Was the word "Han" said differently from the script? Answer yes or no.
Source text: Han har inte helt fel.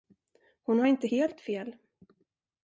yes